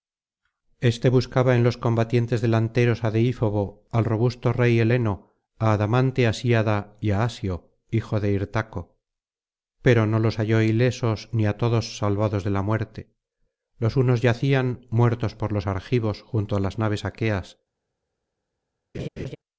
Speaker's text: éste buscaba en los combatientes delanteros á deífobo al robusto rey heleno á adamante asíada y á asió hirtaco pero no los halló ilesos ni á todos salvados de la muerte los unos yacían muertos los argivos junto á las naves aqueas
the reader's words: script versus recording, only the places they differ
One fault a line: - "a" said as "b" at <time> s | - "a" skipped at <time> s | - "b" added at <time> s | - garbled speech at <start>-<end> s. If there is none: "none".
- "hijo de" added at 8.0 s
- "por" added at 15.3 s